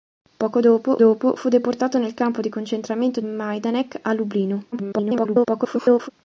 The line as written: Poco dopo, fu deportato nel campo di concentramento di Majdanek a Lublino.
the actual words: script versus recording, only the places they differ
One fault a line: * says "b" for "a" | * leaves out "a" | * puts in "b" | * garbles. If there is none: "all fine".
* puts in "dopo"
* leaves out "di"
* garbles